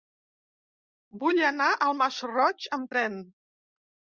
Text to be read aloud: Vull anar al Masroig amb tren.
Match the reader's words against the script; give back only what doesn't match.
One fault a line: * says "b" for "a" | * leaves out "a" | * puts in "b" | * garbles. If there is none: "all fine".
all fine